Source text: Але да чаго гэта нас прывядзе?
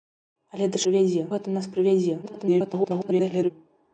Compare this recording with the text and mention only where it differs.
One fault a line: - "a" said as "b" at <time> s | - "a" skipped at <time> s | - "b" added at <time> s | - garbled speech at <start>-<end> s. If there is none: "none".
- "чаго" said as "прывядзе" at 0.8 s
- garbled speech at 2.2-3.5 s